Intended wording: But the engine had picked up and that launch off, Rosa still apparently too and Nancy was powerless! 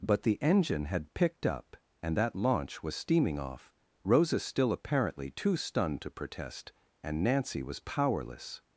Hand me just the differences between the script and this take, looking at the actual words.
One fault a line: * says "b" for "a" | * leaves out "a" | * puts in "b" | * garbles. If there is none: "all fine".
* puts in "was steaming"
* puts in "stunned to protest"